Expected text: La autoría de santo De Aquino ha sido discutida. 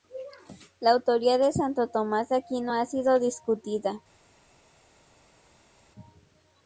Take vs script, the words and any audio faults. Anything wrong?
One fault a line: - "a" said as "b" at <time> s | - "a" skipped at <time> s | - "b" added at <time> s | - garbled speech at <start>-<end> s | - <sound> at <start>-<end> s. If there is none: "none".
- "Tomás" added at 1.9 s